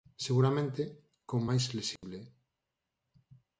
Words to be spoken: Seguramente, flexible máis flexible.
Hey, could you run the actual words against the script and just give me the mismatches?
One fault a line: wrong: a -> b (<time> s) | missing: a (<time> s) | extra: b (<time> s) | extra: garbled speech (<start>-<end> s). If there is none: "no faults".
wrong: flexible -> con (1.3 s)